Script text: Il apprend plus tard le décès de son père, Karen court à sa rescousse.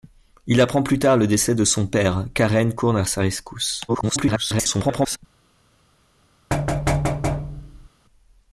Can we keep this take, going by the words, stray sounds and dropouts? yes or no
no